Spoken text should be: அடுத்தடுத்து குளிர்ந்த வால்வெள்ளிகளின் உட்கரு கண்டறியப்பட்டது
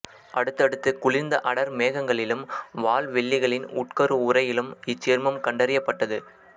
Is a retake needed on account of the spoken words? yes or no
yes